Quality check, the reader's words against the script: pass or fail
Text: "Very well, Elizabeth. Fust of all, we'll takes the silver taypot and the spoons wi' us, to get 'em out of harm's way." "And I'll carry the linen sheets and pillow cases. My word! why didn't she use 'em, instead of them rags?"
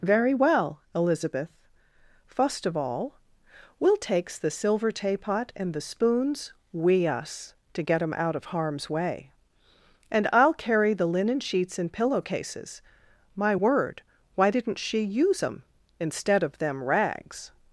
pass